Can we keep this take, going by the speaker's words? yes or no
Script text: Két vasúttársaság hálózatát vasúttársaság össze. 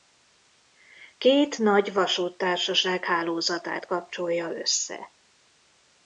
no